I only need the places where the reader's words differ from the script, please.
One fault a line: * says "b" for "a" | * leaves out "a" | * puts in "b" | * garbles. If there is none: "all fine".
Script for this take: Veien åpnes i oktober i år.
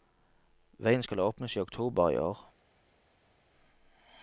* puts in "skal"